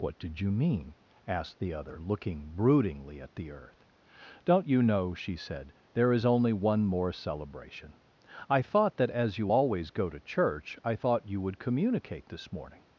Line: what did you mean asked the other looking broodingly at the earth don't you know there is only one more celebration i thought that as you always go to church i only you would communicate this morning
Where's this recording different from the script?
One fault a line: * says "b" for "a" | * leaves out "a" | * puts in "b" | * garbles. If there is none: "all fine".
* puts in "she said"
* says "thought" for "only"